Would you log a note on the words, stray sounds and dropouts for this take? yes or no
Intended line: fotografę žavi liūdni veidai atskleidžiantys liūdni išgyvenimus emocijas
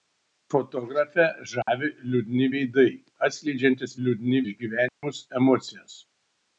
yes